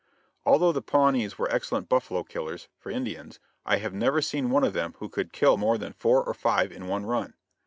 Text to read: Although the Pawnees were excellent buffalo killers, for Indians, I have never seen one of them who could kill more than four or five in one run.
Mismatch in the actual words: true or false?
false